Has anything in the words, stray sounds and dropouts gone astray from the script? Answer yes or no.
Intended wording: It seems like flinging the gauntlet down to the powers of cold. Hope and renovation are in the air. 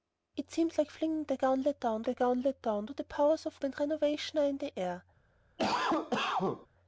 yes